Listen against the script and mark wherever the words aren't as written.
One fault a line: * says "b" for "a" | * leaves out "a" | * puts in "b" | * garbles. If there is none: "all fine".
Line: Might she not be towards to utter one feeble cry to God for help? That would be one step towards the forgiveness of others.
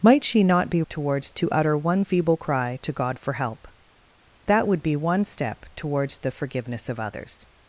all fine